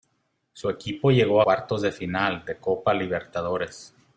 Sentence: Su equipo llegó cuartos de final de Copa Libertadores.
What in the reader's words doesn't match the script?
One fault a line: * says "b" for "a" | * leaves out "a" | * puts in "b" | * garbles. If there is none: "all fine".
all fine